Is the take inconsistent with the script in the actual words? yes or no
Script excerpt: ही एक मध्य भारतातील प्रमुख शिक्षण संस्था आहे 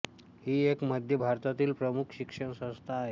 no